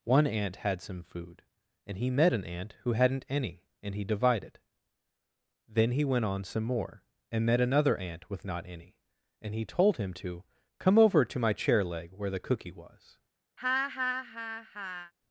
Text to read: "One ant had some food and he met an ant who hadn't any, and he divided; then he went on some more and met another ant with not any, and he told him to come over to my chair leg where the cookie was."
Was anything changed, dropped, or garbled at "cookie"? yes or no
no